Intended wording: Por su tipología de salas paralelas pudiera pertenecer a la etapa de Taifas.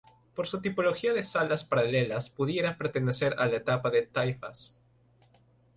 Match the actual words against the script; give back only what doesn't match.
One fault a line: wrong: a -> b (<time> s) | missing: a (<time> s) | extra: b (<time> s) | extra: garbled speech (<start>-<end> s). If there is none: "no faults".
no faults